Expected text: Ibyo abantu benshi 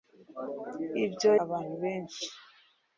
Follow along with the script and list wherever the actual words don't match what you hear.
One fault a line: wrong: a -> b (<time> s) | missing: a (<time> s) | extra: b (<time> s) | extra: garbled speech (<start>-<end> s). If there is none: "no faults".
no faults